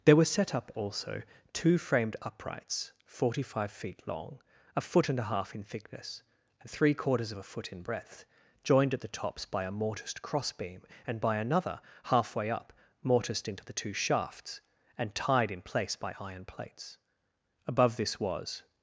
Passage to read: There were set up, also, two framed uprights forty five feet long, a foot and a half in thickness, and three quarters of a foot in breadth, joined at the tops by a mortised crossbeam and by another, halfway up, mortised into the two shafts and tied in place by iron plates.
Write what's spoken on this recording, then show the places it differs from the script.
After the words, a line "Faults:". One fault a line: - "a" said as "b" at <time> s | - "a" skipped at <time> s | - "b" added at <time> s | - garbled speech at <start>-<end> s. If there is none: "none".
There were set up, also, two framed uprights forty five feet long, a foot and a half in thickness, and three quarters of a foot in breadth, joined at the tops by a mortised crossbeam and by another, halfway up, mortised into the two shafts and tied in place by iron plates. Above this was
Faults:
- "Above this was" added at 17.7 s